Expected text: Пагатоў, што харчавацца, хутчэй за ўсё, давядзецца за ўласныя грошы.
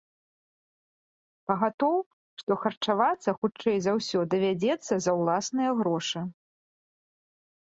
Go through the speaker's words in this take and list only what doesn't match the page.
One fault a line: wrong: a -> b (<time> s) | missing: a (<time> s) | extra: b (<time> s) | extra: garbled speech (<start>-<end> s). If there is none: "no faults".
no faults